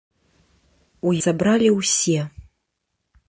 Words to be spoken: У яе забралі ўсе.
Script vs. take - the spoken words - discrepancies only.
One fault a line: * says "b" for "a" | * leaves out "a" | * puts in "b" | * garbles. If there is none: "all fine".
* leaves out "яе"